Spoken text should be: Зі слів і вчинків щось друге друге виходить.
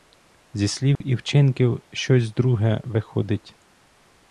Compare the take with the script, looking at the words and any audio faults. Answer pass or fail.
fail